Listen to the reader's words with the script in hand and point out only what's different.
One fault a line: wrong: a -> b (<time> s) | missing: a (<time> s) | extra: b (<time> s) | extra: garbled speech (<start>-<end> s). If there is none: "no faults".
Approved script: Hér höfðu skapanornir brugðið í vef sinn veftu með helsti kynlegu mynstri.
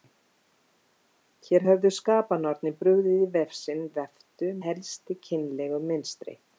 missing: með (4.5 s)